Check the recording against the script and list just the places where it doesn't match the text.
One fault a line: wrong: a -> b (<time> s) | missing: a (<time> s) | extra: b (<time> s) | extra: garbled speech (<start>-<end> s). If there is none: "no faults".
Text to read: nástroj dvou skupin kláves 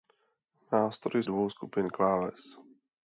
no faults